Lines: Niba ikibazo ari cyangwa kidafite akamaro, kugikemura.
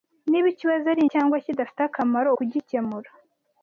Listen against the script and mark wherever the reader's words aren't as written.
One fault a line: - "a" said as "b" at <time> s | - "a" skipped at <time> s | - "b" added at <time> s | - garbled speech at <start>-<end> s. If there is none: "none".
none